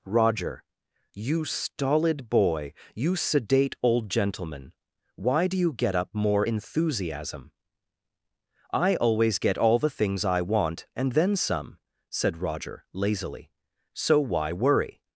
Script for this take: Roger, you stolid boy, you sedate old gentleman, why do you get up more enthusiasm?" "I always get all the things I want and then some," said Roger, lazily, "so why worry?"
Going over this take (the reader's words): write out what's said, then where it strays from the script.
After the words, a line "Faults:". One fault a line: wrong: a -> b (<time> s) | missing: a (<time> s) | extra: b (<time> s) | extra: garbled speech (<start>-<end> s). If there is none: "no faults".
Roger, you stolid boy, you sedate old gentleman, why do you get up more enthusiasm?" "I always get all the things I want and then some," said Roger, lazily, "so why worry?"
Faults:
no faults